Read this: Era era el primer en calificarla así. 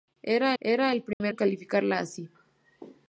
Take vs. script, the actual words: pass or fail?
pass